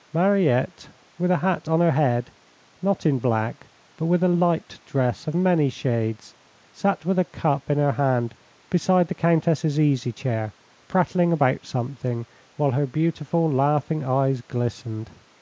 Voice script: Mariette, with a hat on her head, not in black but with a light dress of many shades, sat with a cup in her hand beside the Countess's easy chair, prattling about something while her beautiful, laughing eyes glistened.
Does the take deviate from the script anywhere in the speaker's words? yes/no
no